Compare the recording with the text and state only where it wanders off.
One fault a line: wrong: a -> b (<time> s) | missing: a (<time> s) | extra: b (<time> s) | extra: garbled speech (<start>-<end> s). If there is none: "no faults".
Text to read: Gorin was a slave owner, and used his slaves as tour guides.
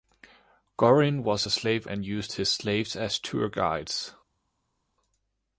missing: owner (1.8 s)